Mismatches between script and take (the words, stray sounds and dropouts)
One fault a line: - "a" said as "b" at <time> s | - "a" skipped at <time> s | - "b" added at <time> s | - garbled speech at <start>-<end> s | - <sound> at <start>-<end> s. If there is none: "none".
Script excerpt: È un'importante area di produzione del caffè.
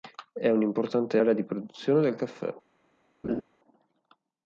- laugh at 3.2-3.4 s